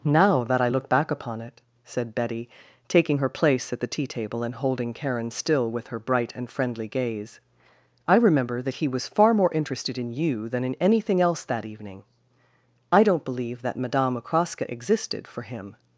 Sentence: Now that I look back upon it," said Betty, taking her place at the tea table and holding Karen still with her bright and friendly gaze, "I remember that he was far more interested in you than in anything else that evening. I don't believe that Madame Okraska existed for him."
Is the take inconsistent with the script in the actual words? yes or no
no